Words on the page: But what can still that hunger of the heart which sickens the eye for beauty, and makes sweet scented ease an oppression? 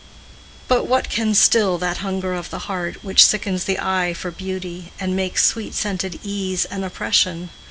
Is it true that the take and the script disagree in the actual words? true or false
false